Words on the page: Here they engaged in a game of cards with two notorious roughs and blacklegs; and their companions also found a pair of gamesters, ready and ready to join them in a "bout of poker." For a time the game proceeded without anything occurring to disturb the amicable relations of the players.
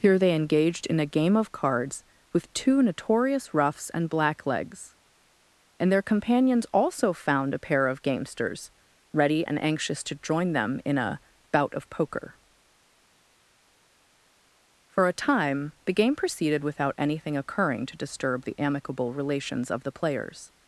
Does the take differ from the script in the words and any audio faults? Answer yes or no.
yes